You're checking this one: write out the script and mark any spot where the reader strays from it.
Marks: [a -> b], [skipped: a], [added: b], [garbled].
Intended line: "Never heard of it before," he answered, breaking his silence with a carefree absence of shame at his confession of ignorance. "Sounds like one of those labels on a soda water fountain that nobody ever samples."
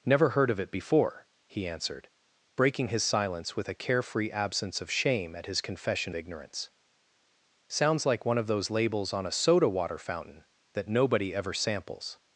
"Never heard of it before," he answered, breaking his silence with a carefree absence of shame at his confession [skipped: of] ignorance. "Sounds like one of those labels on a soda water fountain that nobody ever samples."